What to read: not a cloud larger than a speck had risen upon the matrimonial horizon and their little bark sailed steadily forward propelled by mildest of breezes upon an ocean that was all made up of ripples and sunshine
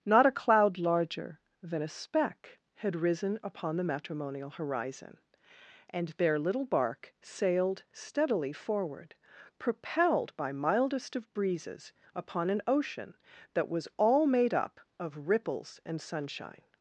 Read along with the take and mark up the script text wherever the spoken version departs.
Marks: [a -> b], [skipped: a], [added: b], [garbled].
not a cloud larger than a speck had risen upon the matrimonial horizon and their little bark sailed steadily forward propelled by mildest of breezes upon an ocean that was all made up of ripples and sunshine